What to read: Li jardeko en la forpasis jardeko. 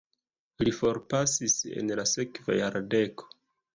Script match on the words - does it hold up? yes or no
no